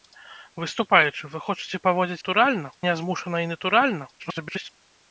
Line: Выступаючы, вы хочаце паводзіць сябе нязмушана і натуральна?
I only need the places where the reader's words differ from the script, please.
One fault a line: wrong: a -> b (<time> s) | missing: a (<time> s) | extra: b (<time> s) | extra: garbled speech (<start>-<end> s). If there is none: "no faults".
wrong: сябе -> натуральна (2.2 s)
extra: garbled speech (4.2-4.7 s)